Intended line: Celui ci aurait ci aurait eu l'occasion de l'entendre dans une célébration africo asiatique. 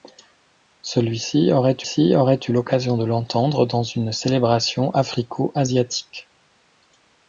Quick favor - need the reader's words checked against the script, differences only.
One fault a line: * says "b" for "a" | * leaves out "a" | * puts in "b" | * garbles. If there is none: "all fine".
all fine